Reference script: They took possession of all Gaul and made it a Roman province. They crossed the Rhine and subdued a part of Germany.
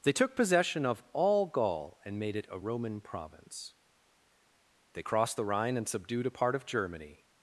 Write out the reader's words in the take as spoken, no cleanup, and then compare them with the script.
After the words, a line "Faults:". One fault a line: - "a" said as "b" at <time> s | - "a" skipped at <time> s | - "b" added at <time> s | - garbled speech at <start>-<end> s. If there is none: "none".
They took possession of all Gaul and made it a Roman province. They crossed the Rhine and subdued a part of Germany.
Faults:
none